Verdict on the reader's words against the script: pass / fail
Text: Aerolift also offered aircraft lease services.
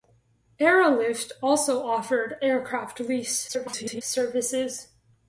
fail